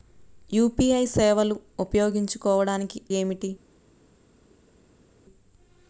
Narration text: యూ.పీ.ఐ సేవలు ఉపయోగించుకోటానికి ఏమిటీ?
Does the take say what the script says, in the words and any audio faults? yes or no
yes